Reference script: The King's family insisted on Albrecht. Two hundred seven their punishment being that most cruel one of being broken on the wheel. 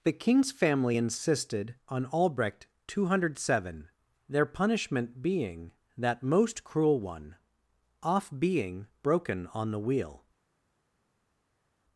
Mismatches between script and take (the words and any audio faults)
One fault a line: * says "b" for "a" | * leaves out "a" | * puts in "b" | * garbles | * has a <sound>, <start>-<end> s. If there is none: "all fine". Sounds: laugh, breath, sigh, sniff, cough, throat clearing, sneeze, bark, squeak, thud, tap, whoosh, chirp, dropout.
* says "off" for "of"